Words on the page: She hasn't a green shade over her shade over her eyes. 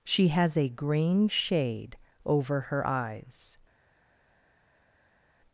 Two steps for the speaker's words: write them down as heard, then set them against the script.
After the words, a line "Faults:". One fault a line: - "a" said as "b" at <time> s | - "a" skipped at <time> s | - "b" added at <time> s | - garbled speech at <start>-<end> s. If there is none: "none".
She has a green shade over her eyes.
Faults:
- "hasn't" said as "has" at 0.3 s
- "shade over her" skipped at 2.9 s